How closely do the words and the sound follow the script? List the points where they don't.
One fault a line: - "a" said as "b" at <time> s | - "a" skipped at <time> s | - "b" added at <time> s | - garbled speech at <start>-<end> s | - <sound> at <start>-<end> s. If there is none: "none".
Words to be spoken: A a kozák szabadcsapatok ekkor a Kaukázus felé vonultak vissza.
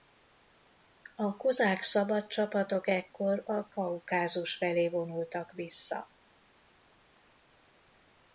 - "a" skipped at 1.4 s